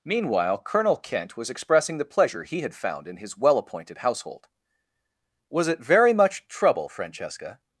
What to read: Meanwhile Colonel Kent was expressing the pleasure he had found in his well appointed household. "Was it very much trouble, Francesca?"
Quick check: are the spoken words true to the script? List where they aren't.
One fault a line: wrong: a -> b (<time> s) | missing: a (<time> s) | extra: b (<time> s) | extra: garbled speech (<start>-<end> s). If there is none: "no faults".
no faults